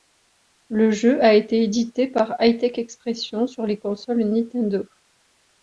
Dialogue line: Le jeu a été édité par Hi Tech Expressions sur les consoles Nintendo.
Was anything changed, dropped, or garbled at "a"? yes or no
no